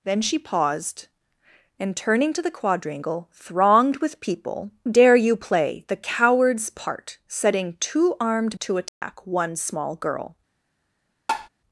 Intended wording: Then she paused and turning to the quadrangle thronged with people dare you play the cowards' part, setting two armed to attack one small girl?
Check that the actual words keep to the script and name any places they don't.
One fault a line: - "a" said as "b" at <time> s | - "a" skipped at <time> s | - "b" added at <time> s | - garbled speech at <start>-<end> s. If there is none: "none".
none